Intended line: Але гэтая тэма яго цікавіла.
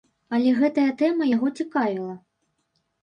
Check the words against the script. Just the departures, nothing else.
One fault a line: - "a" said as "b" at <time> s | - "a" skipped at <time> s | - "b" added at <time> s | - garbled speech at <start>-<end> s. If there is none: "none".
none